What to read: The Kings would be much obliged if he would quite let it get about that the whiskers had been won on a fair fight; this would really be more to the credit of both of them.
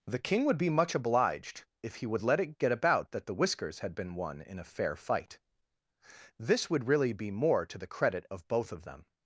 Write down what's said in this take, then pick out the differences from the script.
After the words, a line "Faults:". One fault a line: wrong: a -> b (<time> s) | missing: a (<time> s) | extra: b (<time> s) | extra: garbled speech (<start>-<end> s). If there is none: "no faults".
The King would be much obliged if he would let it get about that the whiskers had been won in a fair fight; this would really be more to the credit of both of them.
Faults:
wrong: Kings -> King (0.2 s)
missing: quite (2.2 s)
wrong: on -> in (4.4 s)